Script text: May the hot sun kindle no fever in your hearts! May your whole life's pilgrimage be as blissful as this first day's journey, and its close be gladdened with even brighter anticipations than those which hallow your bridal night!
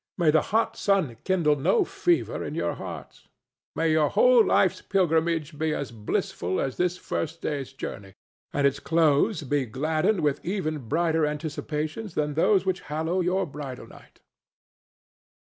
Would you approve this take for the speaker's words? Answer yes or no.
yes